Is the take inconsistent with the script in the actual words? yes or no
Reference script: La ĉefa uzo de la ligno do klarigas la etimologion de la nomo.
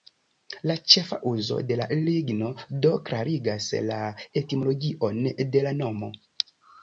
no